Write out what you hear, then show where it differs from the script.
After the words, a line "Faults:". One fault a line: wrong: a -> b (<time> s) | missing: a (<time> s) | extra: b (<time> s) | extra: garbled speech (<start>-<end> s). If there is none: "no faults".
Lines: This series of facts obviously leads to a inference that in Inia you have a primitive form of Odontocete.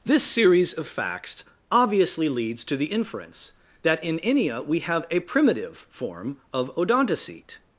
This series of facts obviously leads to the inference that in Inia we have a primitive form of Odontocete.
Faults:
wrong: a -> the (2.8 s)
wrong: you -> we (4.7 s)